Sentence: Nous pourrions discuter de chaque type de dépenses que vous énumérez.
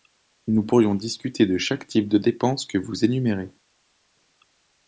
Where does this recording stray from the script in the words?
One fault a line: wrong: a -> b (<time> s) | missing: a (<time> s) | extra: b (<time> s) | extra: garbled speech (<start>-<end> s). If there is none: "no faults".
no faults